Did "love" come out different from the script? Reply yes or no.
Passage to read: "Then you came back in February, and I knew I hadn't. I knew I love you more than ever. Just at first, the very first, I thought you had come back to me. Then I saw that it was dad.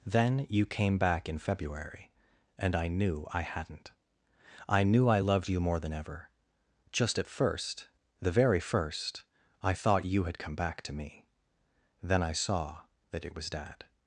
yes